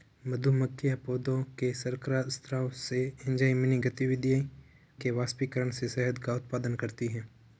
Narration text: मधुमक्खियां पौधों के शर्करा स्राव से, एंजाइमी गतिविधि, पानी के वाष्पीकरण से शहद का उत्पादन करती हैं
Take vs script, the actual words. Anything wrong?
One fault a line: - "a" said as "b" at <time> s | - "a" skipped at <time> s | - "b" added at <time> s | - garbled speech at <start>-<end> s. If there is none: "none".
- "पानी" skipped at 4.4 s